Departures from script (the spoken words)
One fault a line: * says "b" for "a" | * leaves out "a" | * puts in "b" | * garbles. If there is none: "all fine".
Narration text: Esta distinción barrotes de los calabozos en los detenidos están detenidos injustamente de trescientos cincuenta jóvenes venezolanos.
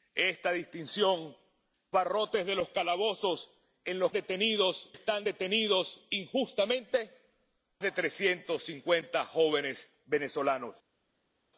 all fine